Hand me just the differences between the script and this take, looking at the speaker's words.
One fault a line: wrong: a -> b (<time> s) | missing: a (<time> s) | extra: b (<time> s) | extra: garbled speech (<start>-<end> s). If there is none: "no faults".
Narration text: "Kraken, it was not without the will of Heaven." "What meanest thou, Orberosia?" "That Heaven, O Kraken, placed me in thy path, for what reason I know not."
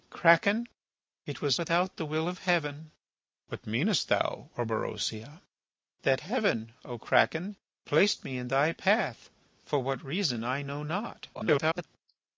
missing: not (1.6 s)
extra: garbled speech (11.3-11.8 s)